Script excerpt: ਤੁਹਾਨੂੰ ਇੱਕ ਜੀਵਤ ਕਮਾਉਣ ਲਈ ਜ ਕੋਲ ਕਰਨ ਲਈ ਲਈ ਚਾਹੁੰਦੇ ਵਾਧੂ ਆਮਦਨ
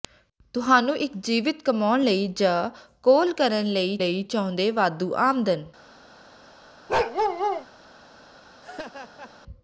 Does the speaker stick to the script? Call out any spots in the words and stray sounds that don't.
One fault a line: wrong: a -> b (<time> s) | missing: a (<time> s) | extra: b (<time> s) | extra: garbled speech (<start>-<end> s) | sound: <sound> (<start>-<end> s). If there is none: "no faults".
sound: bark (6.9-7.7 s)
sound: laugh (8.6-9.3 s)